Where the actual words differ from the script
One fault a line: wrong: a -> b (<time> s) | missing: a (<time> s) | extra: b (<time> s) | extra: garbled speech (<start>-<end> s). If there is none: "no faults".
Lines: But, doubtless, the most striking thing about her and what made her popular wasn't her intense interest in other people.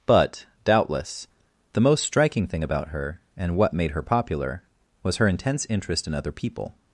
wrong: wasn't -> was (5.0 s)